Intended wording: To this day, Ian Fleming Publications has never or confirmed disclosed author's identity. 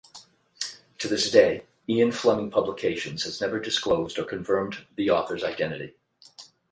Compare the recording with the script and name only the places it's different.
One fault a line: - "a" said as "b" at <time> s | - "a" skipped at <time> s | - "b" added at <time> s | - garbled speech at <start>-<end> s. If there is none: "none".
- "disclosed" added at 3.6 s
- "disclosed" said as "the" at 5.0 s